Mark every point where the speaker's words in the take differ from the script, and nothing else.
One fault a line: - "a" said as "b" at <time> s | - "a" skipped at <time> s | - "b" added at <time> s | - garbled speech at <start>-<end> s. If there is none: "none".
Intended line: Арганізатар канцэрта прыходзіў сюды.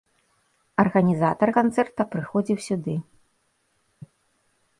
none